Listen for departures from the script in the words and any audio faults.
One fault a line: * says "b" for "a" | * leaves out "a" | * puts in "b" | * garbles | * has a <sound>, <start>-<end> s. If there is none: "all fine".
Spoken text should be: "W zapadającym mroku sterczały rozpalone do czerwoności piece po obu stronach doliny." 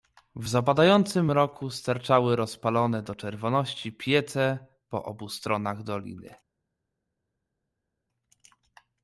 all fine